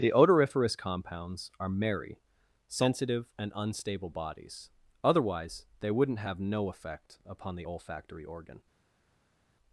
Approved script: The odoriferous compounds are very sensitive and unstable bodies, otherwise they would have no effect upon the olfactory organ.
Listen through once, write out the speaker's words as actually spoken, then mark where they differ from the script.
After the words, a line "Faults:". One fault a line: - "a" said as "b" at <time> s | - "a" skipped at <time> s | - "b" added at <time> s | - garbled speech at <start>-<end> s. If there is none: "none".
The odoriferous compounds are merry sensitive and unstable bodies, otherwise they wouldn't have no effect upon the olfactory organ.
Faults:
- "very" said as "merry" at 1.7 s
- "would" said as "wouldn't" at 5.9 s